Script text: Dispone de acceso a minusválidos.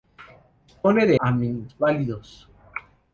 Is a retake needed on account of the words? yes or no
yes